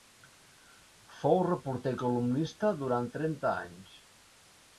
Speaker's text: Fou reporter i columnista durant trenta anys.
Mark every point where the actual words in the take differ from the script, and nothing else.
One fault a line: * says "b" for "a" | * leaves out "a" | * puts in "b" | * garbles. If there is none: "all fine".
all fine